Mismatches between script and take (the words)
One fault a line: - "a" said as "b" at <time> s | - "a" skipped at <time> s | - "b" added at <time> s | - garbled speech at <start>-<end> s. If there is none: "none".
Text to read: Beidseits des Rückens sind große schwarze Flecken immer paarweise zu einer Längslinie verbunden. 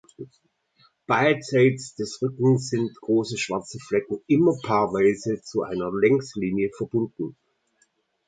none